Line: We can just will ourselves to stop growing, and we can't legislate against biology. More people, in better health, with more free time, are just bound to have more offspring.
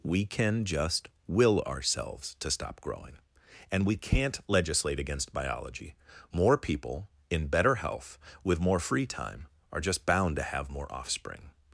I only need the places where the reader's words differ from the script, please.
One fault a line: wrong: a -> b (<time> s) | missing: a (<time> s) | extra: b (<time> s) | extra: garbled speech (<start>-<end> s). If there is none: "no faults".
no faults